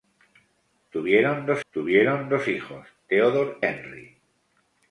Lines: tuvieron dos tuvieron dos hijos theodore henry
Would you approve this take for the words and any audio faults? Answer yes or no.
yes